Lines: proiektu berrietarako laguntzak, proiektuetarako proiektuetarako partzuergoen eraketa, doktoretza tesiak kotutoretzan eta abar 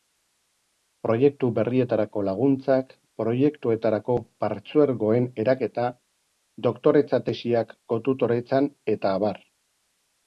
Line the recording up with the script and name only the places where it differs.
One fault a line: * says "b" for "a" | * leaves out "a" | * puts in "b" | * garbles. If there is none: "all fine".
* leaves out "proiektuetarako"